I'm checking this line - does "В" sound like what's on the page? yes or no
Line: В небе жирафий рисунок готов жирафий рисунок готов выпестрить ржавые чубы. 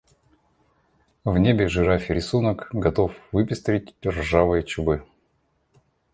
yes